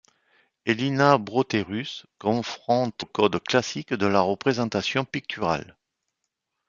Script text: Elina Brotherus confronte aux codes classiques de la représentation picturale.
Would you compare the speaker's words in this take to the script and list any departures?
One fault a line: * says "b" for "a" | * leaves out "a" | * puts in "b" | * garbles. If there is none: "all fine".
all fine